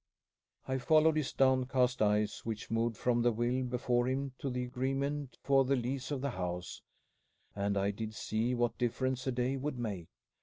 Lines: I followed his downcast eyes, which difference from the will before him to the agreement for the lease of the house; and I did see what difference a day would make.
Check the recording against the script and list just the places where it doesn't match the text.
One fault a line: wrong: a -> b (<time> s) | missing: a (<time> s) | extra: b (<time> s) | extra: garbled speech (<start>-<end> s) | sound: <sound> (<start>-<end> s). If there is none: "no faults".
wrong: difference -> moved (2.7 s)